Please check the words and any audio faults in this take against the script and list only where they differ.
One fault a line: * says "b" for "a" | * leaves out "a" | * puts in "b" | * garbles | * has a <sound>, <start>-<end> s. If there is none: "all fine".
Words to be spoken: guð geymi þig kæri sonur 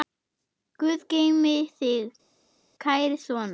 all fine